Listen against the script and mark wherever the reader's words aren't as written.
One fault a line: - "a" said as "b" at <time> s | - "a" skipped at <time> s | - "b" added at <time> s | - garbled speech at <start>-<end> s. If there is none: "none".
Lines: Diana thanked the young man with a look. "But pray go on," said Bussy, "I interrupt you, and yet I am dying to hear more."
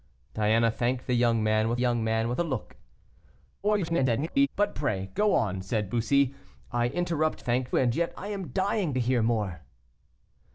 - "young man with" added at 1.7 s
- garbled speech at 3.6-4.5 s
- "you" said as "thanked" at 7.4 s